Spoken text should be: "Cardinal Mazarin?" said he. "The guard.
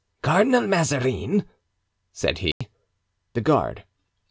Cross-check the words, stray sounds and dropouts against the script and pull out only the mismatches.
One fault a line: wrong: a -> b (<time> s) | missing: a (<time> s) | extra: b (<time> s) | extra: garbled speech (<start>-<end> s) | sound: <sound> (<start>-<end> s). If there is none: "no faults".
sound: dropout (2.5-2.6 s)